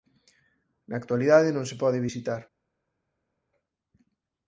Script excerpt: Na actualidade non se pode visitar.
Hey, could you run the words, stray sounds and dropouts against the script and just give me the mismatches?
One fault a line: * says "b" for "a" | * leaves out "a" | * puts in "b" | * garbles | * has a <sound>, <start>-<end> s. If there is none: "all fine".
all fine